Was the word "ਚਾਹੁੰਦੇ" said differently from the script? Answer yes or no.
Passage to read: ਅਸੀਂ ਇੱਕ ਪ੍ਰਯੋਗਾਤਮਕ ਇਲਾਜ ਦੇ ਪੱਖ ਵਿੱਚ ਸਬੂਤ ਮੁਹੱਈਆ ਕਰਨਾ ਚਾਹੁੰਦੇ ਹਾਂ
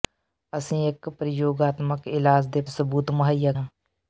yes